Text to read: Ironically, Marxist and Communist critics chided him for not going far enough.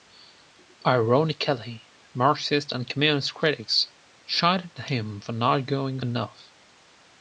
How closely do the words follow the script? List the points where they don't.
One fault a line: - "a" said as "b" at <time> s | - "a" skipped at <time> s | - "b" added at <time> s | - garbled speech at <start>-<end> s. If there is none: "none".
- "far" skipped at 6.0 s